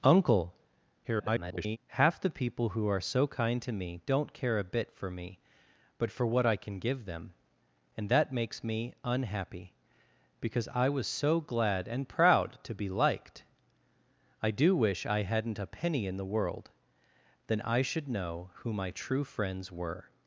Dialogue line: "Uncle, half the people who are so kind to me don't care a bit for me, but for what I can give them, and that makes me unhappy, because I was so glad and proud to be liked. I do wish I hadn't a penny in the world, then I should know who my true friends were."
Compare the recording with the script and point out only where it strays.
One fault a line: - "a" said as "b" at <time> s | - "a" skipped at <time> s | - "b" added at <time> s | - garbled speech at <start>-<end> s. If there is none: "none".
- garbled speech at 1.0-1.8 s